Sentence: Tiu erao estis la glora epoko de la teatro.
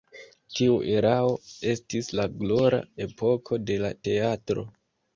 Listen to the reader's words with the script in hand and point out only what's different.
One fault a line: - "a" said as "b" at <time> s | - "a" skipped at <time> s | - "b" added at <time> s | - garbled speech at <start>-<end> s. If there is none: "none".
none